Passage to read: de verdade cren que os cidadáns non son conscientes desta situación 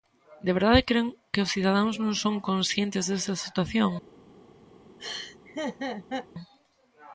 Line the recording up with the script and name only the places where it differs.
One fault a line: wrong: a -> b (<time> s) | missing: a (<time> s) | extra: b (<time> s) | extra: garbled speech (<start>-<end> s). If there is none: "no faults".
no faults